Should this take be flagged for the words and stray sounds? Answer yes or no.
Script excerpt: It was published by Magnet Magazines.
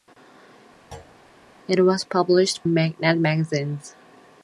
yes